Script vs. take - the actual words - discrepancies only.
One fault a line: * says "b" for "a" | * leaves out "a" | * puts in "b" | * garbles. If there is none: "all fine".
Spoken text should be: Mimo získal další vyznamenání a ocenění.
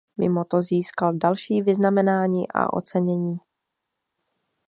* puts in "to"